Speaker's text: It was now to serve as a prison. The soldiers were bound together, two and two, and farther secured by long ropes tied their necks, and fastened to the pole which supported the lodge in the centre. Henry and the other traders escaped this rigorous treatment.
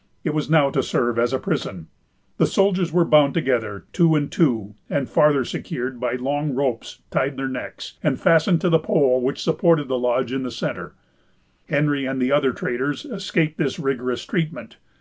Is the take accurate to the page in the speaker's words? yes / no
yes